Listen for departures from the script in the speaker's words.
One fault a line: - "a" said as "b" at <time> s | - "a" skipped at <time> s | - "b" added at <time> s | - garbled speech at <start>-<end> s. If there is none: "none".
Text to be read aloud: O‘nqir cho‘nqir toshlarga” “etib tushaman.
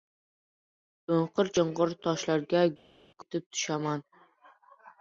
none